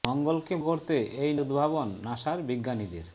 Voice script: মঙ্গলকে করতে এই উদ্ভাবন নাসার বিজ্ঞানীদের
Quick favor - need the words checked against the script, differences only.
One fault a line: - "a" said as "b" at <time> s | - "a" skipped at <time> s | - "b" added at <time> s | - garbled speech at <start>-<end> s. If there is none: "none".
none